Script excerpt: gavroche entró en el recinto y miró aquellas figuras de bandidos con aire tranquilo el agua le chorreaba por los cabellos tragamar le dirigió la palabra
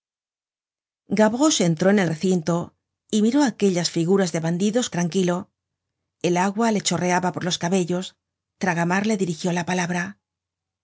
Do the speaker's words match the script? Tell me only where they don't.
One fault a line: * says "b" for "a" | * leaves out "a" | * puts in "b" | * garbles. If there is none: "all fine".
* leaves out "con aire"